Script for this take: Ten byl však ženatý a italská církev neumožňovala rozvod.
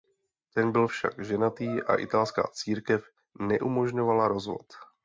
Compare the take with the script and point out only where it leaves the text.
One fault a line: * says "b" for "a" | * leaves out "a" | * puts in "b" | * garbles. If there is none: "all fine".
all fine